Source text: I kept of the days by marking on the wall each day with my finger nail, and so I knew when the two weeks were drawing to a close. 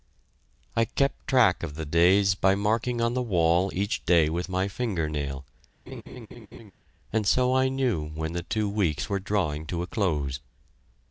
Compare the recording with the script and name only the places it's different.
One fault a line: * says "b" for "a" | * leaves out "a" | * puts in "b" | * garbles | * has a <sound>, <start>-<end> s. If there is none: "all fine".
* puts in "track"
* has a laugh, 5.9-6.7 s